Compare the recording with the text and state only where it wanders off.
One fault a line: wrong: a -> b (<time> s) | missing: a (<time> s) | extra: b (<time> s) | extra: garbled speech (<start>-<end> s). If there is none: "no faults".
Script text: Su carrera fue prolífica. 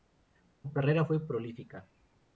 no faults